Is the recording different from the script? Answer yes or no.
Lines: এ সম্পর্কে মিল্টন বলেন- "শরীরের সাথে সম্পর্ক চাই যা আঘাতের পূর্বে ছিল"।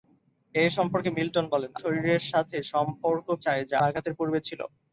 no